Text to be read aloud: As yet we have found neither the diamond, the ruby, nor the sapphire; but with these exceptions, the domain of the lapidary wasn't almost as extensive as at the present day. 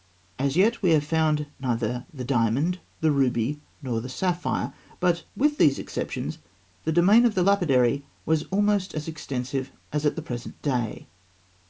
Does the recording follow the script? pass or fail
fail